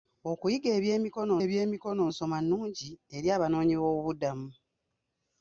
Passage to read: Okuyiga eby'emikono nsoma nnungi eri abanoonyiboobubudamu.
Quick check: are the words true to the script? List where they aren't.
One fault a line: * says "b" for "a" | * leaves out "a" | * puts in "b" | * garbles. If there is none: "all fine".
* puts in "eby'emikono"